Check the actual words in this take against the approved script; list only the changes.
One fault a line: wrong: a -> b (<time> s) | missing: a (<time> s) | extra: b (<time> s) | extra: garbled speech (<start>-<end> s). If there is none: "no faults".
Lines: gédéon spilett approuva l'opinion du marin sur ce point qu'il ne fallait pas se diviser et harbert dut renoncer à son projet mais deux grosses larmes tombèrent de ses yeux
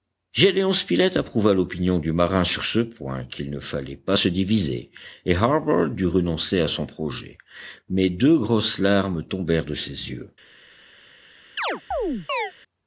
no faults